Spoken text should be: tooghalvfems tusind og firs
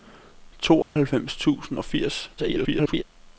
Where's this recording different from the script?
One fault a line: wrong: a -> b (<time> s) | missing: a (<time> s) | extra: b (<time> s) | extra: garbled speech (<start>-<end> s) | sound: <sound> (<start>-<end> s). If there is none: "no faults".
sound: dropout (0.8-1.0 s)
extra: garbled speech (2.4-3.0 s)